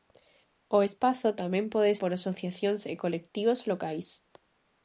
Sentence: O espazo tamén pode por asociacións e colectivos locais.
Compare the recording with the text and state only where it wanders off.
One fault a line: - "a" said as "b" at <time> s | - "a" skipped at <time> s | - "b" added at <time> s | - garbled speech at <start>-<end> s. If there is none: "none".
none